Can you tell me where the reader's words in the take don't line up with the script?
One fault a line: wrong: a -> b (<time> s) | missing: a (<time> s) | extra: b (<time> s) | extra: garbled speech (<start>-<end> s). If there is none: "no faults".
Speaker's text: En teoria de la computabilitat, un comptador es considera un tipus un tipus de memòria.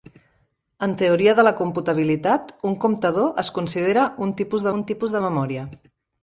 no faults